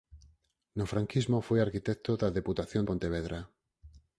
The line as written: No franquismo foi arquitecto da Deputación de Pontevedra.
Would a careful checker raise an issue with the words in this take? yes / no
yes